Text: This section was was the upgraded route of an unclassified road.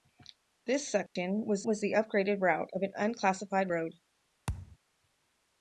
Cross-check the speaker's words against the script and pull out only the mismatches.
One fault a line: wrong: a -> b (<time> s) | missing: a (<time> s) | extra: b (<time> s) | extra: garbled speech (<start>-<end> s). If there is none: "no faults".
no faults